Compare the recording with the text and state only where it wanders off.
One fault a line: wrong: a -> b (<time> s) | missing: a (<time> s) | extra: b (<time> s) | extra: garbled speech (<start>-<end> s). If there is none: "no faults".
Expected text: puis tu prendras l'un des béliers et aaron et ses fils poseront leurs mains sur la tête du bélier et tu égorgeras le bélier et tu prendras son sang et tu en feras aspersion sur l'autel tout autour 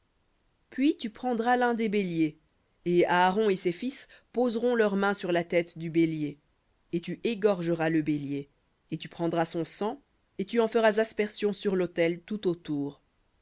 no faults